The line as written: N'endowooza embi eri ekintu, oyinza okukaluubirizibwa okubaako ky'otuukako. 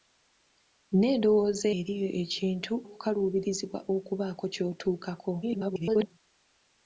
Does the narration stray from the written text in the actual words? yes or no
yes